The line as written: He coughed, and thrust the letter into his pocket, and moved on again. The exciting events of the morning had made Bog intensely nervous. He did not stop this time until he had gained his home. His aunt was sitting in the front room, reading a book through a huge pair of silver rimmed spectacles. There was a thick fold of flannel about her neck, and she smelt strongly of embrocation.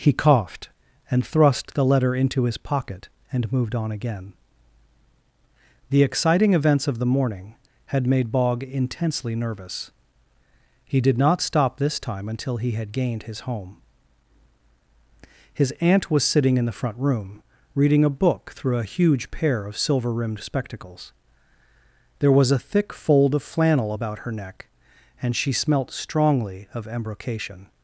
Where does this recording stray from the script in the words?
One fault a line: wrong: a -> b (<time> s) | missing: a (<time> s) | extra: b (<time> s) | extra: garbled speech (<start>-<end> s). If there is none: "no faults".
no faults